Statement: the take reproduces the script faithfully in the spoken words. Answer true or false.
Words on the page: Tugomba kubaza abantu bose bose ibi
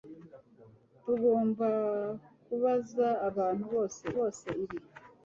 true